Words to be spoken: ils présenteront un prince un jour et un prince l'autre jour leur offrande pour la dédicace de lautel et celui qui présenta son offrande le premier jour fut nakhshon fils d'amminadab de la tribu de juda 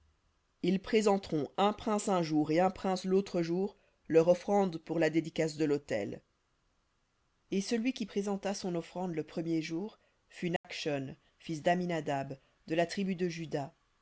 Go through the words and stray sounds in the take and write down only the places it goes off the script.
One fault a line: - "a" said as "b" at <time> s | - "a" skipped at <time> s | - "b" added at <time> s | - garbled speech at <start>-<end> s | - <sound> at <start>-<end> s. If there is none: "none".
- dropout at 10.6-10.6 s